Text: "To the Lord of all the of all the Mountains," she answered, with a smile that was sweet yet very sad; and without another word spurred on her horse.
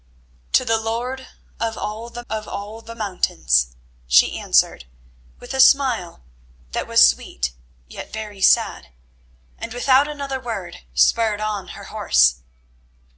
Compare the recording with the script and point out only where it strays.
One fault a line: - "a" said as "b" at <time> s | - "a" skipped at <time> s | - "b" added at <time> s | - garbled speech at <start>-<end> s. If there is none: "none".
none